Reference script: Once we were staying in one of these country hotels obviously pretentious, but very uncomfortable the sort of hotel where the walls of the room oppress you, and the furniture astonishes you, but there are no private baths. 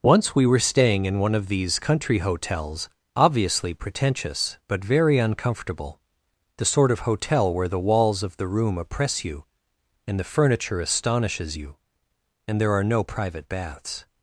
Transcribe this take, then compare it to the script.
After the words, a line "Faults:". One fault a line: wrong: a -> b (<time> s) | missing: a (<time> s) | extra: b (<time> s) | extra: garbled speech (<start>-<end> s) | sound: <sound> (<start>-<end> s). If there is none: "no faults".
Once we were staying in one of these country hotels obviously pretentious, but very uncomfortable the sort of hotel where the walls of the room oppress you, and the furniture astonishes you, and there are no private baths.
Faults:
wrong: but -> and (12.5 s)